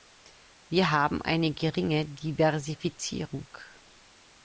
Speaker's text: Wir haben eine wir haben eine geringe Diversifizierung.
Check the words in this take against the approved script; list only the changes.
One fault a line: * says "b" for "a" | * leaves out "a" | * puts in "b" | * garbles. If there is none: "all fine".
* leaves out "wir haben eine"